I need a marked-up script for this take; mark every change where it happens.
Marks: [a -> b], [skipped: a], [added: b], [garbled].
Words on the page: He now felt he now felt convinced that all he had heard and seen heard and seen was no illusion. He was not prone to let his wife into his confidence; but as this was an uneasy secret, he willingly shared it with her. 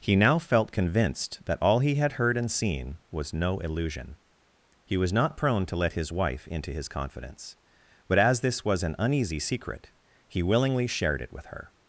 He now felt [skipped: he now felt] convinced that all he had heard and seen [skipped: heard and seen] was no illusion. He was not prone to let his wife into his confidence; but as this was an uneasy secret, he willingly shared it with her.